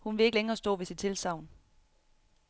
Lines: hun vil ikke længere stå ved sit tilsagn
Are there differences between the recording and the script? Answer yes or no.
no